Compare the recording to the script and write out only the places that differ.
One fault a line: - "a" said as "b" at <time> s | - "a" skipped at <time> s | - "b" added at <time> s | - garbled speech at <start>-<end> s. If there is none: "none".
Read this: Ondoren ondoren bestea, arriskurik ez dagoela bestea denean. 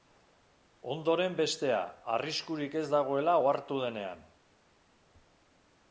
- "ondoren" skipped at 1.4 s
- "bestea" said as "ohartu" at 3.4 s